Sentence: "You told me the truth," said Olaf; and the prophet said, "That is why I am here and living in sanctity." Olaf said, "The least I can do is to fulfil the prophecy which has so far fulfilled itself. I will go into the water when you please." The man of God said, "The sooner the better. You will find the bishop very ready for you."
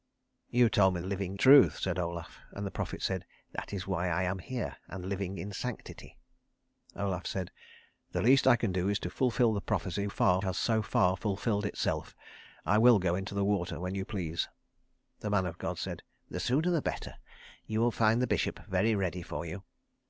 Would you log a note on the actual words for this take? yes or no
yes